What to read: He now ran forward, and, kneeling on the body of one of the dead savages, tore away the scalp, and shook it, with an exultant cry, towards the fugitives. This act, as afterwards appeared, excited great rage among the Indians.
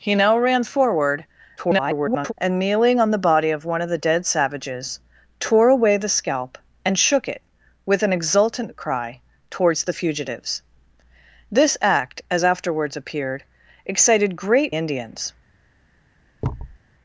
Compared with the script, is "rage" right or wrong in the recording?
wrong